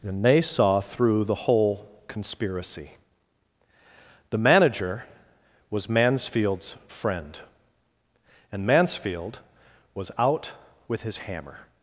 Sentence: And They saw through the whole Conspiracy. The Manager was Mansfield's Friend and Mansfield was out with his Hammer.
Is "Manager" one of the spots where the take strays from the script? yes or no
no